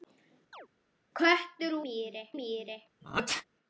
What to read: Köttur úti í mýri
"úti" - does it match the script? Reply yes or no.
no